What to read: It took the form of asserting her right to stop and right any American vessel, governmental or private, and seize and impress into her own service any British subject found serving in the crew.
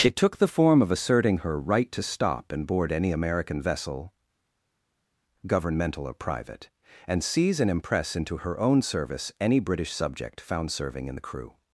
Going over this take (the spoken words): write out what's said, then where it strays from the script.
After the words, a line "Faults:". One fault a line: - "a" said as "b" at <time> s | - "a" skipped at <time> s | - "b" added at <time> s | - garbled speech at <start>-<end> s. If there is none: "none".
It took the form of asserting her right to stop and board any American vessel, governmental or private, and seize and impress into her own service any British subject found serving in the crew.
Faults:
- "right" said as "board" at 2.6 s